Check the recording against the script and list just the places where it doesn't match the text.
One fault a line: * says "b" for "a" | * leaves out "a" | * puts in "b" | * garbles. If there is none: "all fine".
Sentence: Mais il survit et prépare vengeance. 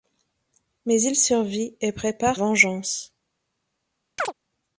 all fine